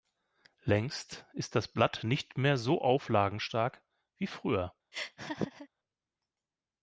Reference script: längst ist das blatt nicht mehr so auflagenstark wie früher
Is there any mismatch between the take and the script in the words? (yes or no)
no